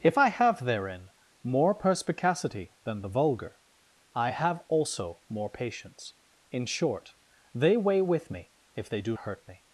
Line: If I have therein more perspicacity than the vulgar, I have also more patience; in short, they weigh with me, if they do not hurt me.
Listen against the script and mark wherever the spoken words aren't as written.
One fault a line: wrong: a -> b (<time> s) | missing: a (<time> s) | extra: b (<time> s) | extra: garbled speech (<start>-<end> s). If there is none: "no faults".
missing: not (9.2 s)